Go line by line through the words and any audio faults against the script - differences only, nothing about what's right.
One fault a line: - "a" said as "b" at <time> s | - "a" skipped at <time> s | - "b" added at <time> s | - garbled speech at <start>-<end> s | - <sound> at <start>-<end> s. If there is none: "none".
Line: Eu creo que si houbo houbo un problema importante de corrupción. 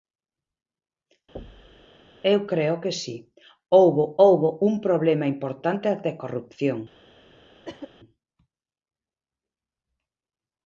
- thud at 1.4-1.9 s
- cough at 7.6-7.9 s